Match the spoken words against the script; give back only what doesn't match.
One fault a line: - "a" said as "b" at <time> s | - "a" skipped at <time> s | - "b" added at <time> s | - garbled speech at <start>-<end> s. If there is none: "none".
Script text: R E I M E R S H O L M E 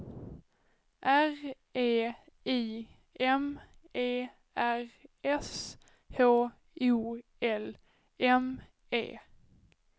none